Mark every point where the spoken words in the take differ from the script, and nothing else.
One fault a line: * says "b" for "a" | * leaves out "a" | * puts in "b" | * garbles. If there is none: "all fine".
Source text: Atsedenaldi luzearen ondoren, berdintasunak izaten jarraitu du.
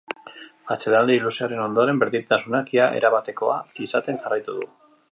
* puts in "ia erabatekoa"